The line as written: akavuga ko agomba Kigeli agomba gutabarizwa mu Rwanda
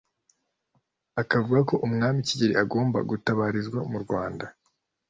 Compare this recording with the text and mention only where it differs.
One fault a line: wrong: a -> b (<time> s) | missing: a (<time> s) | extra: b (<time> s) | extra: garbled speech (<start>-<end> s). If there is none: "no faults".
wrong: agomba -> umwami (1.9 s)